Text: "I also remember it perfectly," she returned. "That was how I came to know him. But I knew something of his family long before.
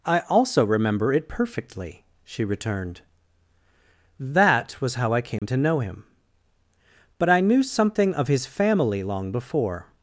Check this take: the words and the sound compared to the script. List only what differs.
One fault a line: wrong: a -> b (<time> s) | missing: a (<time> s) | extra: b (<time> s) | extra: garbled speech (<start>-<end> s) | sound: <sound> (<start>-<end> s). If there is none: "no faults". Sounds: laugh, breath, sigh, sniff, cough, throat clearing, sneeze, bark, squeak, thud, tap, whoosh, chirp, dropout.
sound: dropout (5.4-5.4 s)